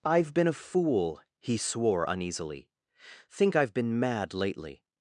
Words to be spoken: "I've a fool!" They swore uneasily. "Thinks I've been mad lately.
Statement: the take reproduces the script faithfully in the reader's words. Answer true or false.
false